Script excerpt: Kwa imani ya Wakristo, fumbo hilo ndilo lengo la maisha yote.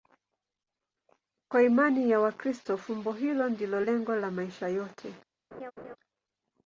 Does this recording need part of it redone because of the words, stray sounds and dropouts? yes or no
yes